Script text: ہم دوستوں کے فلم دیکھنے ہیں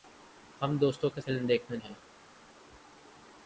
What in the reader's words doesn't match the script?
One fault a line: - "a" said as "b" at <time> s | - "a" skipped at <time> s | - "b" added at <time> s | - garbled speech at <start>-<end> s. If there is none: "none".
none